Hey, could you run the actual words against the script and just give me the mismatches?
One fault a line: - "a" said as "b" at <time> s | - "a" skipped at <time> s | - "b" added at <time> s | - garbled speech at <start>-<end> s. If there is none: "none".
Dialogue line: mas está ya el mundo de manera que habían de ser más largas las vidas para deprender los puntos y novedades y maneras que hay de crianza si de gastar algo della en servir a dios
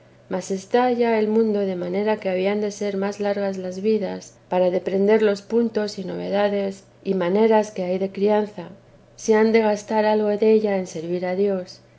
- "han" added at 9.3 s